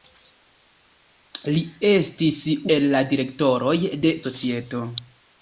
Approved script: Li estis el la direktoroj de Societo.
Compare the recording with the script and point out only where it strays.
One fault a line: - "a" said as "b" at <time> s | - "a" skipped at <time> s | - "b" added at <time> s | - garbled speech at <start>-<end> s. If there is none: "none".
none